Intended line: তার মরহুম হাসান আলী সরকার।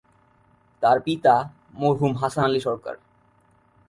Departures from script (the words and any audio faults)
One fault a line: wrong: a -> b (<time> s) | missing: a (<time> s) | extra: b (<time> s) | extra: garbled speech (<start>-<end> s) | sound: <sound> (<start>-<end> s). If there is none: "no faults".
extra: পিতা (1.0 s)